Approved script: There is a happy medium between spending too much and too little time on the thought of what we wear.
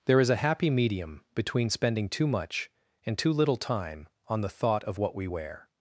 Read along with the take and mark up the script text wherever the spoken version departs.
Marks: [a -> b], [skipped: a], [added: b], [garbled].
There is a happy medium between spending too much and too little time on the thought of what we wear.